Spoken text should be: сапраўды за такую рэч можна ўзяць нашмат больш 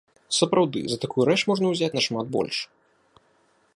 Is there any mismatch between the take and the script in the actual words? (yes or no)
no